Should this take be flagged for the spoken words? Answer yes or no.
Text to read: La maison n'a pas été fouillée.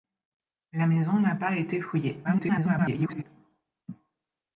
yes